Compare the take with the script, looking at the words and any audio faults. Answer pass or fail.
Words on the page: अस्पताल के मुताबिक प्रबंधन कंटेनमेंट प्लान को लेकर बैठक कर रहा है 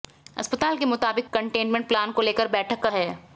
fail